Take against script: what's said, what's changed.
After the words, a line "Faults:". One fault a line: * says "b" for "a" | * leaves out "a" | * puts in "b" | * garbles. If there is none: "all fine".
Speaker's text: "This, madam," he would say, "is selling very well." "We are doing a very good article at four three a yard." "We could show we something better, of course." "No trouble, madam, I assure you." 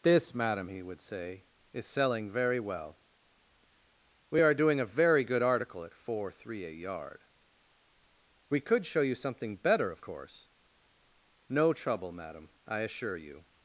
"This, madam," he would say, "is selling very well." "We are doing a very good article at four three a yard." "We could show you something better, of course." "No trouble, madam, I assure you."
Faults:
* says "you" for "we"